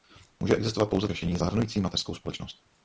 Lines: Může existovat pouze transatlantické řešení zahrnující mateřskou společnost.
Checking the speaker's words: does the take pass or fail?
fail